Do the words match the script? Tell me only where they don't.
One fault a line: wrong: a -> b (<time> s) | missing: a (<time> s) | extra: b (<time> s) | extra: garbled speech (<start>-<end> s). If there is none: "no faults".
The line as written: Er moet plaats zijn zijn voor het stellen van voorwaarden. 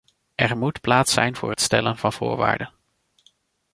missing: zijn (1.4 s)